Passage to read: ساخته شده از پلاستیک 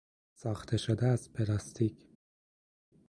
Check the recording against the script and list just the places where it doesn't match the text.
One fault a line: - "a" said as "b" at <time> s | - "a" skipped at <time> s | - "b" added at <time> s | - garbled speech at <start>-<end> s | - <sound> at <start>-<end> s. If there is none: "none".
none